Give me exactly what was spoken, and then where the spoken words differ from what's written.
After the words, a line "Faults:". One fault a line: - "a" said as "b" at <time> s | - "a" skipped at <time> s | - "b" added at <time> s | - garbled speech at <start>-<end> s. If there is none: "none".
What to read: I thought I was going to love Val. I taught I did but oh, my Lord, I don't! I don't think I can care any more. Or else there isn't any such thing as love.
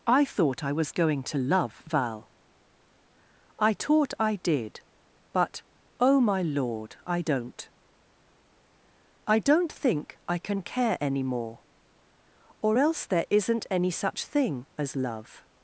I thought I was going to love Val. I taught I did but oh, my Lord, I don't! I don't think I can care any more. Or else there isn't any such thing as love.
Faults:
none